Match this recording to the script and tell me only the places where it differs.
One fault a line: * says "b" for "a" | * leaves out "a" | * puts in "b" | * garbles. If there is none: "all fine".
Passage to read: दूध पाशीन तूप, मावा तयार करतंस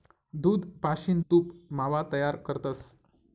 all fine